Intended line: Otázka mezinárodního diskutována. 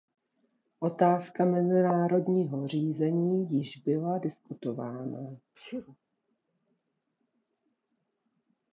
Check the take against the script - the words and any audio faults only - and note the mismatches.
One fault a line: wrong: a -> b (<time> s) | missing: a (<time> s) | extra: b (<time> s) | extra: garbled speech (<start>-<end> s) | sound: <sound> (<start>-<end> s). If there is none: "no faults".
extra: řízení již byla (2.7 s)
sound: sneeze (5.5-6.0 s)